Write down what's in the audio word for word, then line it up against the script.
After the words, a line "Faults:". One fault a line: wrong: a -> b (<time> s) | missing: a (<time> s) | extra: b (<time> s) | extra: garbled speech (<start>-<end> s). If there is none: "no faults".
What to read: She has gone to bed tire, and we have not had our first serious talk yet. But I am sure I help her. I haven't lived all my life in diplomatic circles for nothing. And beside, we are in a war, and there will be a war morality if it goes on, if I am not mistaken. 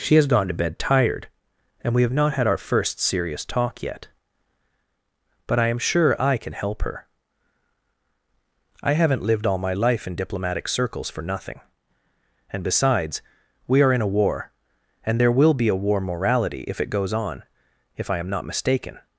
She has gone to bed tired, and we have not had our first serious talk yet. But I am sure I can help her. I haven't lived all my life in diplomatic circles for nothing. And besides, we are in a war, and there will be a war morality if it goes on, if I am not mistaken.
Faults:
wrong: tire -> tired (0.8 s)
extra: can (6.4 s)
wrong: beside -> besides (12.6 s)